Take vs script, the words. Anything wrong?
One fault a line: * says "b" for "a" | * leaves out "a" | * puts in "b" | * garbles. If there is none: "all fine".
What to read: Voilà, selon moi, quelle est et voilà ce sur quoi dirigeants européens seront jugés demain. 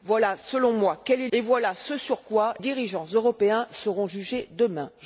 all fine